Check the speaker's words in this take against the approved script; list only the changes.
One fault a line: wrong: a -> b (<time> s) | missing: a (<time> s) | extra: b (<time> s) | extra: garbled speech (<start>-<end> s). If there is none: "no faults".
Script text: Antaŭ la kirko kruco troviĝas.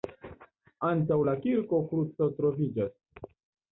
no faults